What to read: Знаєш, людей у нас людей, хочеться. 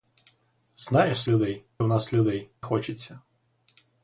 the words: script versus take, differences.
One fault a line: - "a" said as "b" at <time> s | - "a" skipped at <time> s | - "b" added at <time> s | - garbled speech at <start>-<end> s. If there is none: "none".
none